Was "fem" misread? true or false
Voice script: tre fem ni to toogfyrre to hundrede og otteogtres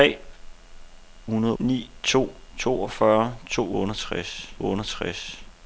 true